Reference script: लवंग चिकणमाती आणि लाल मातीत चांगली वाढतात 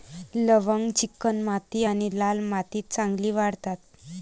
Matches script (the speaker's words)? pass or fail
pass